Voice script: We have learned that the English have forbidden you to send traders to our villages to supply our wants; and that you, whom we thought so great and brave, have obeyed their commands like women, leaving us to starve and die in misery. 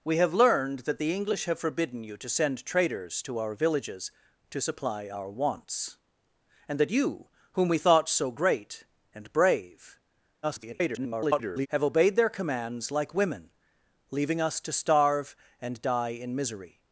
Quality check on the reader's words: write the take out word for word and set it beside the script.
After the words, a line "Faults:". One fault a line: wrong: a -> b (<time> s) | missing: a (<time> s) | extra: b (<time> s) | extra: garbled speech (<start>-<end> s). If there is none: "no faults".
We have learned that the English have forbidden you to send traders to our villages to supply our wants; and that you, whom we thought so great and brave, [garbled] have obeyed their commands like women, leaving us to starve and die in misery.
Faults:
extra: garbled speech (10.4-11.7 s)